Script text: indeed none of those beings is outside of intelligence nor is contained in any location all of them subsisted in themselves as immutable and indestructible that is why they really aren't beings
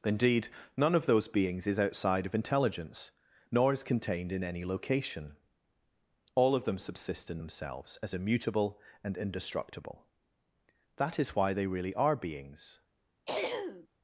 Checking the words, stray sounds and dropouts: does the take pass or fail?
fail